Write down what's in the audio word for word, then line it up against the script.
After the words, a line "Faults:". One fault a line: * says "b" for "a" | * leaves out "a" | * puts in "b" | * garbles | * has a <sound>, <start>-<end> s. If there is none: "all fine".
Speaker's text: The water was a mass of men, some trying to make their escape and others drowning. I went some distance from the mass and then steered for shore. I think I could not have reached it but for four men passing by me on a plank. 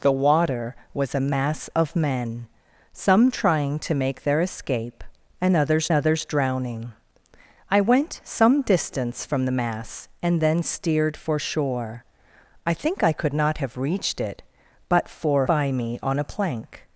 The water was a mass of men, some trying to make their escape and others others drowning. I went some distance from the mass and then steered for shore. I think I could not have reached it but for by me on a plank.
Faults:
* puts in "others"
* leaves out "four men passing"